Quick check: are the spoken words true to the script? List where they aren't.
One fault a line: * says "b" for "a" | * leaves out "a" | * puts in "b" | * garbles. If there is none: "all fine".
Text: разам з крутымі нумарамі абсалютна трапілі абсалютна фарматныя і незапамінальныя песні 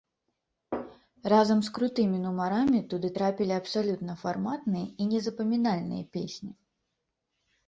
* says "туды" for "абсалютна"